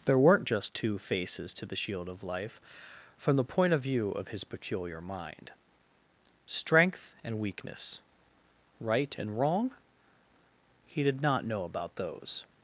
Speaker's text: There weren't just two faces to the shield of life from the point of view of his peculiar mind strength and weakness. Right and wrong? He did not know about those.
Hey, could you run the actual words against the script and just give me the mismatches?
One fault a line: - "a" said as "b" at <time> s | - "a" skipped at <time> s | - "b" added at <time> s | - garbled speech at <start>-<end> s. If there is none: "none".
none